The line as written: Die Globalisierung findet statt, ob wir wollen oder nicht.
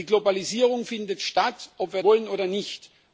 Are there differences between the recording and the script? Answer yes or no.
no